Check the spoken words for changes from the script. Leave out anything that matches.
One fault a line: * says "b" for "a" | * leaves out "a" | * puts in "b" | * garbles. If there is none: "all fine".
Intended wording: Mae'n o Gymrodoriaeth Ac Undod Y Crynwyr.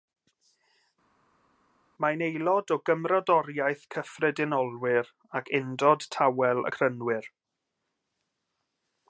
* puts in "aelod"
* puts in "Cyffredinolwyr"
* puts in "Tawel"